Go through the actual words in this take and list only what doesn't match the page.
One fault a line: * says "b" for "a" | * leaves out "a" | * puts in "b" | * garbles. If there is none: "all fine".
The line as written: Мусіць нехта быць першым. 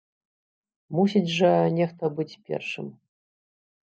* puts in "жа"